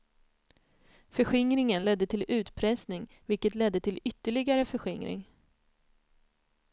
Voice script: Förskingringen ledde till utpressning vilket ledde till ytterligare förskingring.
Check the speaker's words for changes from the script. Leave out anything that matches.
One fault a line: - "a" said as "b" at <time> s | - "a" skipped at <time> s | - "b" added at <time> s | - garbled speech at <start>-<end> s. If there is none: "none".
none